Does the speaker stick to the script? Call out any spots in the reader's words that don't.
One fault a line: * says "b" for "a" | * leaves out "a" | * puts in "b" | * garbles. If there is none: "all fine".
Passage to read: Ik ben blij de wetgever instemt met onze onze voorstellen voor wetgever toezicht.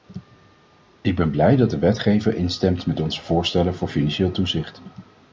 * puts in "dat"
* leaves out "onze"
* says "financieel" for "wetgever"